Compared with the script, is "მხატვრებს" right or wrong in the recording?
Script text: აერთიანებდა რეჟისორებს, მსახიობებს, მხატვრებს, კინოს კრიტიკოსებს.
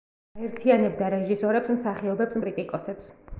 wrong